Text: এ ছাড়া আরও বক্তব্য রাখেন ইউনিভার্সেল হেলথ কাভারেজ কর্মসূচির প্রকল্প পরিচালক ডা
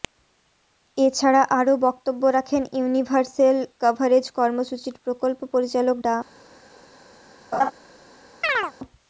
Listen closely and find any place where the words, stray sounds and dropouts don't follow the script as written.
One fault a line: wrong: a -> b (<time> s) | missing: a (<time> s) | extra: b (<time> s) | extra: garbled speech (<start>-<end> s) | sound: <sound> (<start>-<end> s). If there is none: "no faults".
missing: হেলথ (3.6 s)
sound: laugh (7.5-7.7 s)
sound: chirp (8.4-8.7 s)